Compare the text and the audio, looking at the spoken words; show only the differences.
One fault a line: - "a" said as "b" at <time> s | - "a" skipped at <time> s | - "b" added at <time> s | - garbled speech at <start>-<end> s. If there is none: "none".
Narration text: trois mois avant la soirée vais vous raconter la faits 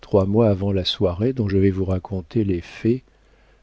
- "dont je" added at 1.3 s
- "la" said as "les" at 2.4 s